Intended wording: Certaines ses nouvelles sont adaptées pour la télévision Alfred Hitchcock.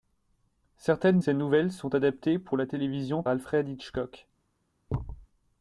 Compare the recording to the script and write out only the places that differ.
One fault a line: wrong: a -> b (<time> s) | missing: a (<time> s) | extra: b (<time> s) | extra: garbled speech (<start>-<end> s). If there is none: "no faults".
no faults